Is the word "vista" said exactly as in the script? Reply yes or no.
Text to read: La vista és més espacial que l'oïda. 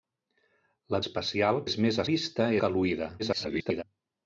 no